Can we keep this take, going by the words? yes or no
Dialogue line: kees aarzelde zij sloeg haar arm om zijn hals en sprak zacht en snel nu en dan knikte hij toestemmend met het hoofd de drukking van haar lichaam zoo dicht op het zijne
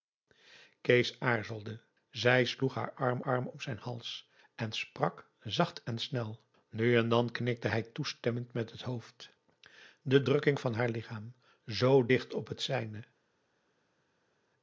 no